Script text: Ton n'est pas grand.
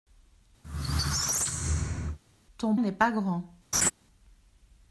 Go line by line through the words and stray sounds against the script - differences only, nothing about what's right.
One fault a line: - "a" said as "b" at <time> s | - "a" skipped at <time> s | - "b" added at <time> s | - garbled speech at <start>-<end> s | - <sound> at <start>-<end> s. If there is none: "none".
- squeak at 0.6-2.2 s
- laugh at 3.7-3.9 s